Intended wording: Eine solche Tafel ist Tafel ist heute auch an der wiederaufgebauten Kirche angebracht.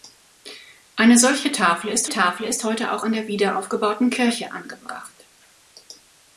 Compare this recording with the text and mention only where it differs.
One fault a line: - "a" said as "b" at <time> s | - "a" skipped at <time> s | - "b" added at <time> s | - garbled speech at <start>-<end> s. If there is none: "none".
none